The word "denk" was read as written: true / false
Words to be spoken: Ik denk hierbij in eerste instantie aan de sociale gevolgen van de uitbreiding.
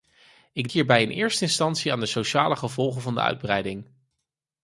false